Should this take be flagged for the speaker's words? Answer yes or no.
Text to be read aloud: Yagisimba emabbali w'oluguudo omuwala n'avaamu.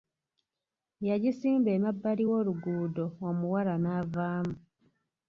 no